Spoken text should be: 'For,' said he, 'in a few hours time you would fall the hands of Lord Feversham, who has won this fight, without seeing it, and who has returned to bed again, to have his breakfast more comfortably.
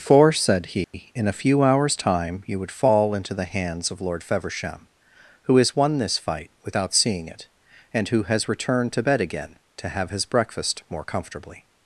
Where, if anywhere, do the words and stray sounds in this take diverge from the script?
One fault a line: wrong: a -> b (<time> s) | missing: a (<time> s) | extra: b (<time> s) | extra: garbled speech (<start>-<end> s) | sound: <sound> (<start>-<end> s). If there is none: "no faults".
sound: dropout (0.8-0.9 s)
extra: into (3.1 s)